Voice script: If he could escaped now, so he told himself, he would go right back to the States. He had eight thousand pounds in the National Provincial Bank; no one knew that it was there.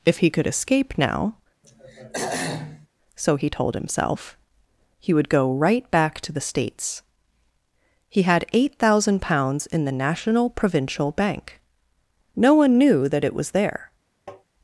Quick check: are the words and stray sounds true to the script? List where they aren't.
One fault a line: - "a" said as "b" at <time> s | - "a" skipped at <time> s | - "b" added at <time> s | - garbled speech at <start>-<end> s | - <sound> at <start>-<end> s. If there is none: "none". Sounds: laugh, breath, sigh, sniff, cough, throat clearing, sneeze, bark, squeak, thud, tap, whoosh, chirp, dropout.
- "escaped" said as "escape" at 0.5 s
- throat clearing at 1.6-2.9 s
- tap at 14.3-14.4 s